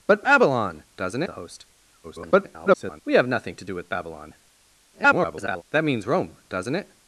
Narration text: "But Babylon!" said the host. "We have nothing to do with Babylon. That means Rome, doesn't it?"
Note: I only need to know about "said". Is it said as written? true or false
false